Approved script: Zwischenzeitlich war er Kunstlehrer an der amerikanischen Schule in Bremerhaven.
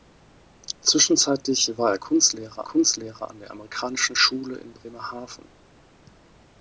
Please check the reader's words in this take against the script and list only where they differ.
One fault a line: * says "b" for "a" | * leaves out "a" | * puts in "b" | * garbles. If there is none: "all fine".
* puts in "Kunstlehrer"